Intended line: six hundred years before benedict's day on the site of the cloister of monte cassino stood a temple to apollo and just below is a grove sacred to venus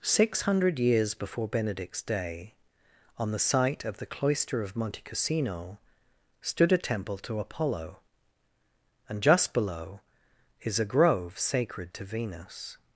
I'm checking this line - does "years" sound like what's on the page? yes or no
yes